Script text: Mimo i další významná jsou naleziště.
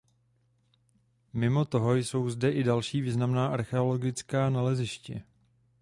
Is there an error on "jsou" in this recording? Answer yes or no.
yes